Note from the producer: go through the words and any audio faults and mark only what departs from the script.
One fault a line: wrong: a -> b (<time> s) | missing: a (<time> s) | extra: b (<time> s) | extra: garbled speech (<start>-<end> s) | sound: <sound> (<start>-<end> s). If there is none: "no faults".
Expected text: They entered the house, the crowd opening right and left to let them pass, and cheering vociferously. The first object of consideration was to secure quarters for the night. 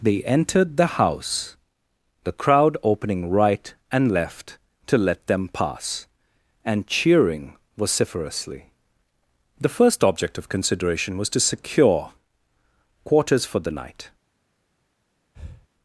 sound: breath (15.3-15.7 s)